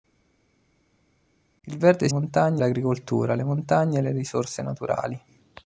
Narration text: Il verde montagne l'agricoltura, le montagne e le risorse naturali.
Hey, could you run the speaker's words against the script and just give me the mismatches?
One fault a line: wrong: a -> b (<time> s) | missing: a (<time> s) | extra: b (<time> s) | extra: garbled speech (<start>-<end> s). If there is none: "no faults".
no faults